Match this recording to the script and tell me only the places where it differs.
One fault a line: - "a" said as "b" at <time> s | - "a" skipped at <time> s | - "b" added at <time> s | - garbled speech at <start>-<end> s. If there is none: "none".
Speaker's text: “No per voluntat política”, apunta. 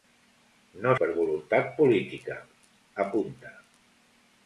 none